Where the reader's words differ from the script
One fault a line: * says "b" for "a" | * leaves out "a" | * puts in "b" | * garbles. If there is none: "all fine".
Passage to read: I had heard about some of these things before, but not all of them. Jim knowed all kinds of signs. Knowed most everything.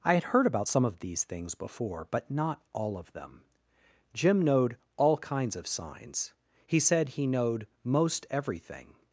* puts in "He said he"